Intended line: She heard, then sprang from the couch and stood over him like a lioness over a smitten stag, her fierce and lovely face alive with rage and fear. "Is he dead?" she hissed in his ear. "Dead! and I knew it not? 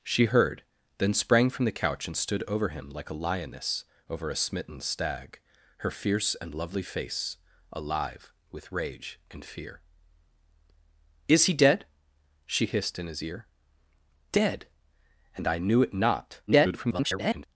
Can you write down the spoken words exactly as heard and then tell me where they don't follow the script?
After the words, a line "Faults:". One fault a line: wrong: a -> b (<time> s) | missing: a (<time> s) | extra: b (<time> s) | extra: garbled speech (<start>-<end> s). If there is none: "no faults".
She heard, then sprang from the couch and stood over him like a lioness over a smitten stag, her fierce and lovely face alive with rage and fear. "Is he dead?" she hissed in his ear. "Dead! and I knew it not? [garbled]
Faults:
extra: garbled speech (16.5-17.5 s)